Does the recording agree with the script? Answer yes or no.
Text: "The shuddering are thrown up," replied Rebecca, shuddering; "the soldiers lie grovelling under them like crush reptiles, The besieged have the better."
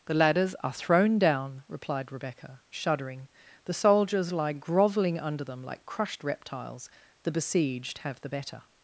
no